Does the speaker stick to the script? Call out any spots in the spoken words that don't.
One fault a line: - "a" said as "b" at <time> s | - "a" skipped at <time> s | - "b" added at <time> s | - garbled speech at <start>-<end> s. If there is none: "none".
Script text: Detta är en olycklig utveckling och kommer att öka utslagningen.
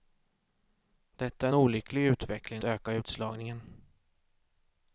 - "en" skipped at 1.5 s
- "och kommer att" skipped at 2.6 s